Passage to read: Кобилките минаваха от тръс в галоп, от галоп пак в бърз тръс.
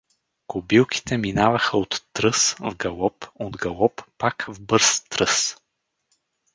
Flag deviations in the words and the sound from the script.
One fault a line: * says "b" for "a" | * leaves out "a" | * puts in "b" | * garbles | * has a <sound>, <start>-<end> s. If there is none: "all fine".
all fine